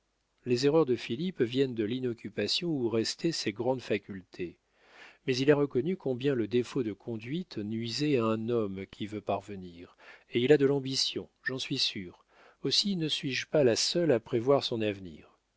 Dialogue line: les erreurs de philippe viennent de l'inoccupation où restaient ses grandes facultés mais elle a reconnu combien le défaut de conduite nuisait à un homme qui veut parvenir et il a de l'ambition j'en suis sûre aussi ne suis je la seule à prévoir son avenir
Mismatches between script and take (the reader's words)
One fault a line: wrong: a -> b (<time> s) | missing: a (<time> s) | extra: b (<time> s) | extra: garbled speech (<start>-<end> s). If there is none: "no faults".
wrong: elle -> il (5.4 s)
extra: pas (13.4 s)